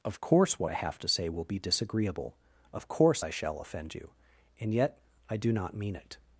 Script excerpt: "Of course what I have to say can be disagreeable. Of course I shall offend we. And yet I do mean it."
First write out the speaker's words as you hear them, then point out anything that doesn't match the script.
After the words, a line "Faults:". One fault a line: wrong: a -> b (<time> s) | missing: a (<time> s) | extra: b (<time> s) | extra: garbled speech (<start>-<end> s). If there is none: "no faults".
"Of course what I have to say will be disagreeable. Of course I shall offend you. And yet I do not mean it."
Faults:
wrong: can -> will (1.3 s)
wrong: we -> you (3.9 s)
extra: not (5.5 s)